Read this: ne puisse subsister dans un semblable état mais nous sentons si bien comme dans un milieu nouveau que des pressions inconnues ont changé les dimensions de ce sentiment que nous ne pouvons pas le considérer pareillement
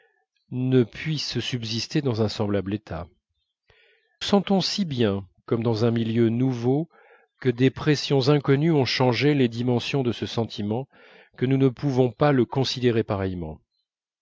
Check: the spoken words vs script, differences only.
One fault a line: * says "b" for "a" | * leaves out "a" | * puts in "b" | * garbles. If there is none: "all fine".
* leaves out "mais nous"